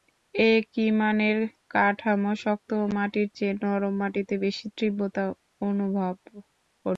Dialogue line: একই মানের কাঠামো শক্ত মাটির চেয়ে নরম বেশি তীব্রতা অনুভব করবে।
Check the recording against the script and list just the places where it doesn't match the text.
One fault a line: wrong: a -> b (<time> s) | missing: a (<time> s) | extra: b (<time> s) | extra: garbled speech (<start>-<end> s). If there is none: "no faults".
extra: মাটিতে (4.0 s)